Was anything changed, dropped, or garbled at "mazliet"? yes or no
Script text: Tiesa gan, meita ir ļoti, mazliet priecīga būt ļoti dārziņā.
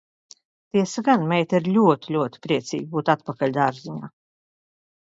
yes